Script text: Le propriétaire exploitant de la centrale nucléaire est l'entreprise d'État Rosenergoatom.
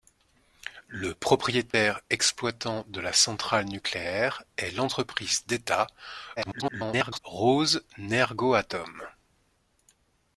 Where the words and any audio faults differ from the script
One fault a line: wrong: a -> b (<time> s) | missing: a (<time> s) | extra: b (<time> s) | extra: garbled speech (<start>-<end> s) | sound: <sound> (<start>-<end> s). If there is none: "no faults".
sound: dropout (1.7-1.7 s)
extra: garbled speech (6.4-7.2 s)